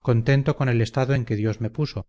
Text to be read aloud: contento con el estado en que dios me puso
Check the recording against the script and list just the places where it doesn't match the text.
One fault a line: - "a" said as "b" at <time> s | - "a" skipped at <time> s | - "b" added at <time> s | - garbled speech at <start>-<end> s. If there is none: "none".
none